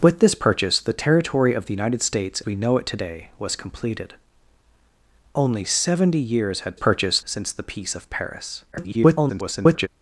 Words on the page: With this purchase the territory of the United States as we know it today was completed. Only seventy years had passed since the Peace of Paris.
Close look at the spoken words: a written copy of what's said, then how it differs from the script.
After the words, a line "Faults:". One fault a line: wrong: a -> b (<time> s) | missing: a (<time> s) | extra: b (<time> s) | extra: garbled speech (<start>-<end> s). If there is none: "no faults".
With this purchase the territory of the United States we know it today was completed. Only seventy years had purchase since the Peace of Paris. [garbled]
Faults:
missing: as (2.4 s)
wrong: passed -> purchase (6.7 s)
extra: garbled speech (8.7-9.9 s)